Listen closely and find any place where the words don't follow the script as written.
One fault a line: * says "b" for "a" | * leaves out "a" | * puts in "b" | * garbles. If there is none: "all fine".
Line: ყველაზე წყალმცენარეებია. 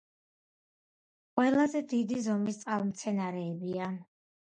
* puts in "დიდი ზომის"